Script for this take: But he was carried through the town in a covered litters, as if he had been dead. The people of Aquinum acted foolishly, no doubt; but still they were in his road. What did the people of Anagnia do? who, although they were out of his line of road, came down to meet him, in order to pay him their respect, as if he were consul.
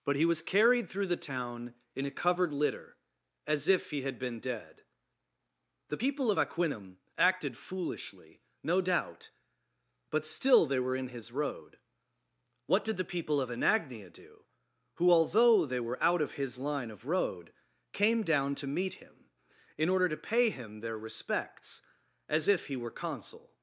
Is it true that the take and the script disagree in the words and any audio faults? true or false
true